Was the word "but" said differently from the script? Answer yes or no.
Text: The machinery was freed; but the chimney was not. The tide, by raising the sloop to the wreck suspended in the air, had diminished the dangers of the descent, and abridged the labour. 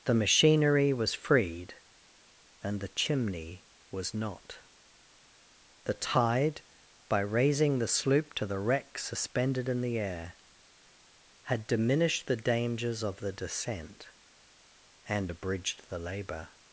yes